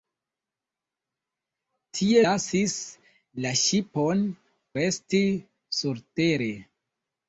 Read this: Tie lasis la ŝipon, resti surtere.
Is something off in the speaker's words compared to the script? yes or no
no